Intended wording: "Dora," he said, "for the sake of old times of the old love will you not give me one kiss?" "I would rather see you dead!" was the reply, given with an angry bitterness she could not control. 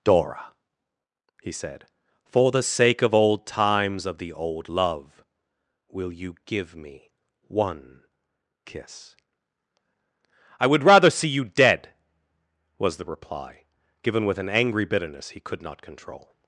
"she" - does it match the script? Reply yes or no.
no